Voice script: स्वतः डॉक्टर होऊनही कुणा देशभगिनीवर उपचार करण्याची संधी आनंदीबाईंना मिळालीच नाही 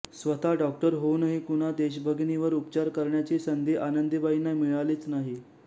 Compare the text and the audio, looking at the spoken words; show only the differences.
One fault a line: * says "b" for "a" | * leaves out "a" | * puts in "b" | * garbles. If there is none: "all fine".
all fine